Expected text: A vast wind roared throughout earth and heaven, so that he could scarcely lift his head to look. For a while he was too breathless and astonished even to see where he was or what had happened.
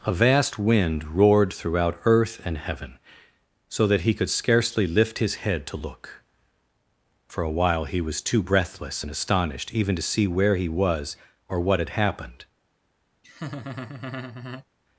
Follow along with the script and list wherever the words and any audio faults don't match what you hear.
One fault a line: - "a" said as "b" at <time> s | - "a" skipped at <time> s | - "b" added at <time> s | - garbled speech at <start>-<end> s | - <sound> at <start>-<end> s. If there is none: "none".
- laugh at 13.2-14.7 s